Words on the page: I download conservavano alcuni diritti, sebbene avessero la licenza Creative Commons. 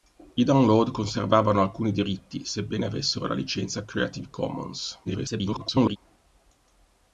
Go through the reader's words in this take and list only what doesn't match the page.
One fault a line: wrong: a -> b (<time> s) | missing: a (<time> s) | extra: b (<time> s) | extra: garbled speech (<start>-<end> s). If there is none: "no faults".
extra: garbled speech (5.0-6.0 s)